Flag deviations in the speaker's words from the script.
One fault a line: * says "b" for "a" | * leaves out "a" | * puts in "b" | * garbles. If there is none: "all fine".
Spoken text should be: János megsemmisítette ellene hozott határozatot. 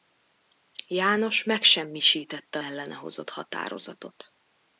all fine